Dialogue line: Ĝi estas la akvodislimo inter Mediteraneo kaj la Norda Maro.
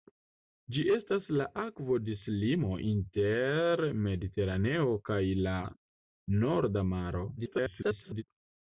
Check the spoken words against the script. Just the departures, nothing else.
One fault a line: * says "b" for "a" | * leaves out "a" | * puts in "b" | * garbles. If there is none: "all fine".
* garbles